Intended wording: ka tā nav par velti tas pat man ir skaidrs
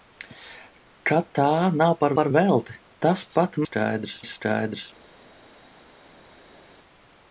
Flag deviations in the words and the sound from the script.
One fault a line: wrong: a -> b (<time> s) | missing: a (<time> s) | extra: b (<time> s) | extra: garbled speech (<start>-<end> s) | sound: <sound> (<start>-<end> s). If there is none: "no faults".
extra: par (2.2 s)
wrong: man -> skaidrs (3.6 s)